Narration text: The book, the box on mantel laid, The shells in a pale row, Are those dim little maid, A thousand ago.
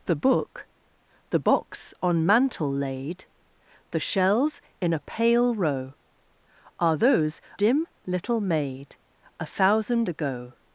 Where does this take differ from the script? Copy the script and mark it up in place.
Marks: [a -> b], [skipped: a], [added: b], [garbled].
The book, the box on mantel laid, The shells in a pale row, Are those dim little maid, A thousand ago.